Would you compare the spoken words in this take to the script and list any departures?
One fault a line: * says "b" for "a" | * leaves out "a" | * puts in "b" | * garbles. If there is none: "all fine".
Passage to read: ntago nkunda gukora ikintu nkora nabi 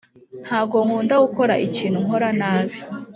all fine